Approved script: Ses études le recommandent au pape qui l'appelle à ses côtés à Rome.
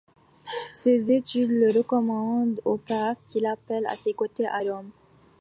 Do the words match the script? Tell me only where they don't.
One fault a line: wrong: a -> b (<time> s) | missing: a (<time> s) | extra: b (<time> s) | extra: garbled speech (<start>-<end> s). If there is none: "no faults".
no faults